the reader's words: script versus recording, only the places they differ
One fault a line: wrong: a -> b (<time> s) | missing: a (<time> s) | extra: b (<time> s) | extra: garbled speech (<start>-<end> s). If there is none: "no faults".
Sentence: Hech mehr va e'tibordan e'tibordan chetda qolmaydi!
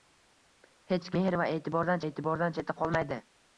no faults